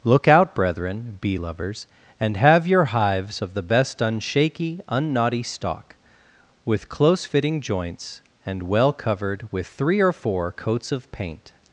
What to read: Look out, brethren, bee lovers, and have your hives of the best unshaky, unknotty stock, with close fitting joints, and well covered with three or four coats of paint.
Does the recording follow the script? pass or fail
pass